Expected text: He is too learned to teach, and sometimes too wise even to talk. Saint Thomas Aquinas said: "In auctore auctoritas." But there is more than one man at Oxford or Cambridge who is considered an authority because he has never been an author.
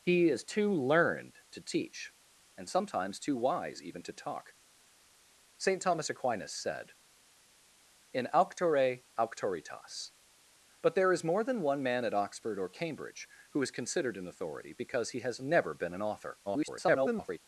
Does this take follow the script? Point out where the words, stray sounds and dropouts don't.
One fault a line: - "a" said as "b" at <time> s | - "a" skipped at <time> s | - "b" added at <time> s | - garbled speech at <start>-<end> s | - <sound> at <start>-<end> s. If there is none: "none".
- garbled speech at 16.5-17.4 s